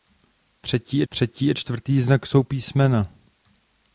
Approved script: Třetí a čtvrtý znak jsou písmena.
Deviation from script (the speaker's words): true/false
true